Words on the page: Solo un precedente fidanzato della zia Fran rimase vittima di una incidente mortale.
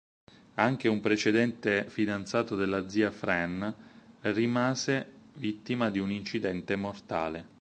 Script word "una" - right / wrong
wrong